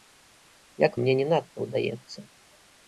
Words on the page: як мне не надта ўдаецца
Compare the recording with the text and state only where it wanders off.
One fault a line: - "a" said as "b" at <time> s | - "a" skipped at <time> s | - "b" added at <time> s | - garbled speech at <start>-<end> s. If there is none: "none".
none